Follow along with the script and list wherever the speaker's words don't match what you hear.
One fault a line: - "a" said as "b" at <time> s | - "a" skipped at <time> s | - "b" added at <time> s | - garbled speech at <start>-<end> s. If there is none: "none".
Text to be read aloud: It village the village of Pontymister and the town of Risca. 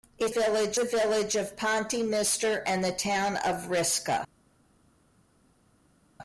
none